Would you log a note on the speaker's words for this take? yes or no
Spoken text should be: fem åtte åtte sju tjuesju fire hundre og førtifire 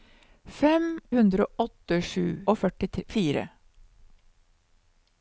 yes